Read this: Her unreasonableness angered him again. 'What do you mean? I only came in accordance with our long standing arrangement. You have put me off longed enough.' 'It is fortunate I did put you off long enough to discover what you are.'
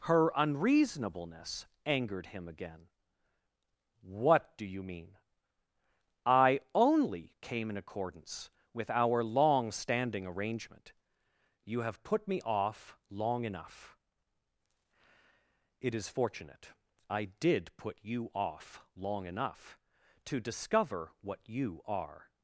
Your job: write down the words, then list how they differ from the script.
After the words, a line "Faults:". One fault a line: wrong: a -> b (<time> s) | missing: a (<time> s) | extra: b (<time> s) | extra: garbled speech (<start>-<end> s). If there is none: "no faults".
Her unreasonableness angered him again. 'What do you mean? I only came in accordance with our long standing arrangement. You have put me off long enough.' 'It is fortunate I did put you off long enough to discover what you are.'
Faults:
wrong: longed -> long (13.1 s)